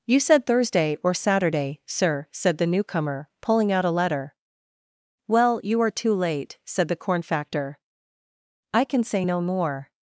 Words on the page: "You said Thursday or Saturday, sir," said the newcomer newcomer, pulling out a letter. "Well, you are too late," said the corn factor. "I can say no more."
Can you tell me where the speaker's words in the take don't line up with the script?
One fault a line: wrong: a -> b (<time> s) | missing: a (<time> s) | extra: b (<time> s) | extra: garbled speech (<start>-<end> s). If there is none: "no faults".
missing: newcomer (3.3 s)